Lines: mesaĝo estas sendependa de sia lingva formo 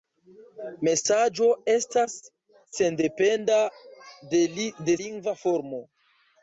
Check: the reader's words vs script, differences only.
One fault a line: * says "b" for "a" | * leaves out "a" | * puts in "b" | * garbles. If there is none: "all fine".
* leaves out "sia"